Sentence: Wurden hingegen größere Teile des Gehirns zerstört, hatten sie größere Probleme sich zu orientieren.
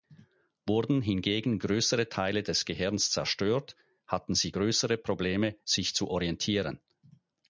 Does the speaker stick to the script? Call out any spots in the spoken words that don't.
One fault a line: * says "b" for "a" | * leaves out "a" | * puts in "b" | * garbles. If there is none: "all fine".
all fine